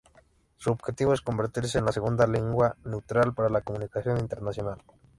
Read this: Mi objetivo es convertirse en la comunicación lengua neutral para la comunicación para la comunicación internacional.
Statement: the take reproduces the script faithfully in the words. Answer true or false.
false